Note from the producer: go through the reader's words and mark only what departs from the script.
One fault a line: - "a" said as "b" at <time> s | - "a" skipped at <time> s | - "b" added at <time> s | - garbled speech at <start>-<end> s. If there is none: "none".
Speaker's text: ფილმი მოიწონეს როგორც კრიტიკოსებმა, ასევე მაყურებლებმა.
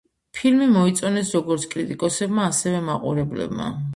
none